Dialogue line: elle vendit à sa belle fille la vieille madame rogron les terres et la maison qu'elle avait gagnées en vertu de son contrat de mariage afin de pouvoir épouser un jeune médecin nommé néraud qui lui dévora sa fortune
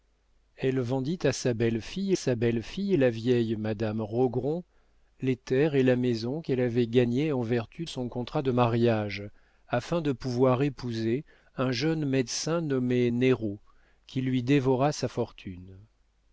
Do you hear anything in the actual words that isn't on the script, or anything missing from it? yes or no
yes